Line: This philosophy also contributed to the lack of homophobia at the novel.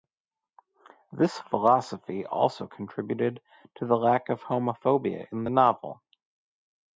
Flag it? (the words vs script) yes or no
yes